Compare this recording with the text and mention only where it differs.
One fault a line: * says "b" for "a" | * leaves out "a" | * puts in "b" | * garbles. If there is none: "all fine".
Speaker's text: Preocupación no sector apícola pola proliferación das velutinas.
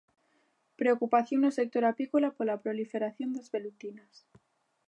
all fine